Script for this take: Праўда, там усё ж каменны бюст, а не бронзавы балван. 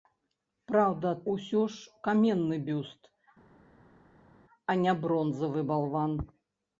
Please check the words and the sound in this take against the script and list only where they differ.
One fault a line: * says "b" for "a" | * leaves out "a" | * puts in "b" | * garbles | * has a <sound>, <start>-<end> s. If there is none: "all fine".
* leaves out "там"